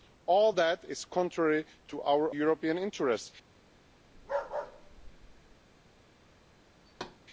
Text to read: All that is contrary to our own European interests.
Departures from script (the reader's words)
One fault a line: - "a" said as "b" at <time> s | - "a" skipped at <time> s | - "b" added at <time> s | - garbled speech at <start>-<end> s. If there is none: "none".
- "own" skipped at 2.3 s